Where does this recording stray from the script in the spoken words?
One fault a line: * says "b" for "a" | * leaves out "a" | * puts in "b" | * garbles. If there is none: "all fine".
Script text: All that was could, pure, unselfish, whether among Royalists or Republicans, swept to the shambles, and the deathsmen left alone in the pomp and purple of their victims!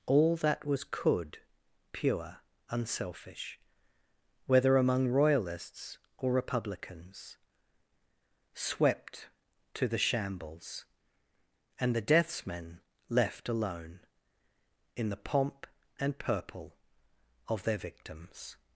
all fine